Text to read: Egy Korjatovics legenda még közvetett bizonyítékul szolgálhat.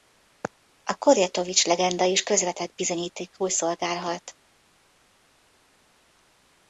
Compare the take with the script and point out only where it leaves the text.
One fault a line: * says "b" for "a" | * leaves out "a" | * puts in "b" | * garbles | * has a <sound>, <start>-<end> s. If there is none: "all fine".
* says "A" for "Egy"
* says "is" for "még"